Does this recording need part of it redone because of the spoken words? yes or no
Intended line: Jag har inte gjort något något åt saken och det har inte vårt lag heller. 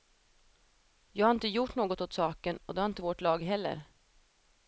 yes